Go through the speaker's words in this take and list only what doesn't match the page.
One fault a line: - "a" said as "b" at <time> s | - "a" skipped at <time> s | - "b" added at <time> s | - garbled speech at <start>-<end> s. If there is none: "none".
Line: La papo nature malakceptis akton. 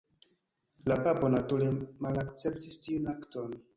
- "tiun" added at 2.9 s